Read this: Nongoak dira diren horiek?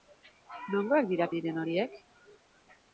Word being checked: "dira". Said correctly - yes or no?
yes